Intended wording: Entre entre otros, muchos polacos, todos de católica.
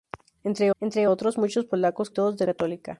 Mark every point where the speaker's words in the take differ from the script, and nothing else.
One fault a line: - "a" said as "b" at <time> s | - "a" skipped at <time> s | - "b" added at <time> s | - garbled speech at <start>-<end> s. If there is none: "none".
none